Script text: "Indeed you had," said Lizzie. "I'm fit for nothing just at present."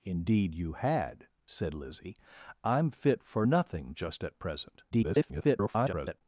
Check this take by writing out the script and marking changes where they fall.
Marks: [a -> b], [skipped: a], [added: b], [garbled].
"Indeed you had," said Lizzie. "I'm fit for nothing just at present." [garbled]